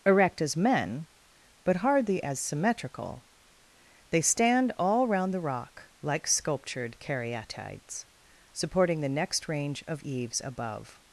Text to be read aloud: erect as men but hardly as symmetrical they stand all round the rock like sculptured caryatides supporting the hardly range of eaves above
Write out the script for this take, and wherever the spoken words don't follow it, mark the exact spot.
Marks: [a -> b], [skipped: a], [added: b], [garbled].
erect as men but hardly as symmetrical they stand all round the rock like sculptured caryatides supporting the [hardly -> next] range of eaves above